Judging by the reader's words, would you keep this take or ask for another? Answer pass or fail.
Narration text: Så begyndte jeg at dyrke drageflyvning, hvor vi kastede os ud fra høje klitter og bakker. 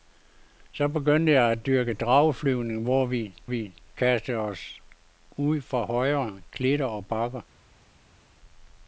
fail